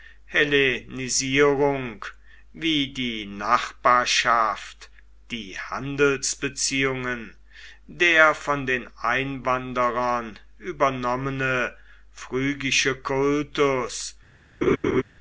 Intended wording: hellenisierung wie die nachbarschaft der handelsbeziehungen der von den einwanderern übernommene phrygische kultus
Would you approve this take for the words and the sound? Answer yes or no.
no